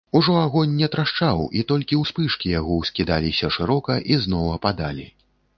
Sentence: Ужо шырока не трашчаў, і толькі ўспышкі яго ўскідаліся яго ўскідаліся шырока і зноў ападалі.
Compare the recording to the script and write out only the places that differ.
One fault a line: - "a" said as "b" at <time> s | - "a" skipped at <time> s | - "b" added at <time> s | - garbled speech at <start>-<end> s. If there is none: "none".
- "шырока" said as "агонь" at 0.4 s
- "яго ўскідаліся" skipped at 3.5 s